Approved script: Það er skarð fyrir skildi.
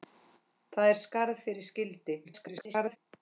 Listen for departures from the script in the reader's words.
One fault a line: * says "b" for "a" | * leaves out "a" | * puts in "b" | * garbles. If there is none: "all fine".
* garbles